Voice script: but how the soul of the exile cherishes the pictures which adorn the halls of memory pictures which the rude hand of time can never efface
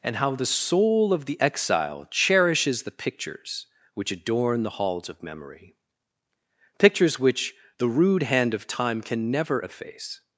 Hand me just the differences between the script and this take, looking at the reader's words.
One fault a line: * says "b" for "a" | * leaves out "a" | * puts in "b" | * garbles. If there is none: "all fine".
* says "and" for "but"